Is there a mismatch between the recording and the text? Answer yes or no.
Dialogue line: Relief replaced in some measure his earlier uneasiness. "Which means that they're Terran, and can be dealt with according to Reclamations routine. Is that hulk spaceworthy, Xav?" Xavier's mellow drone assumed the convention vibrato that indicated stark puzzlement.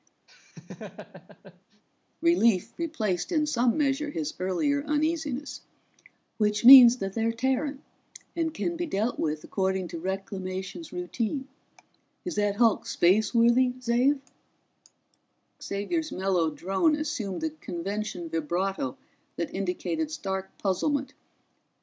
no